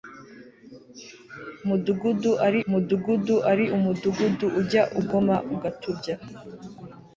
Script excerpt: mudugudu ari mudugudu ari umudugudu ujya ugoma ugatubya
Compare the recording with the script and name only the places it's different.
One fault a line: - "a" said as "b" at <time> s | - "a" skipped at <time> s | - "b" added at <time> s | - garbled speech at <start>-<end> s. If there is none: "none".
none